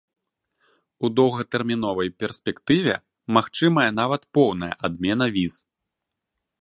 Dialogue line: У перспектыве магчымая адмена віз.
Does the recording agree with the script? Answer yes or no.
no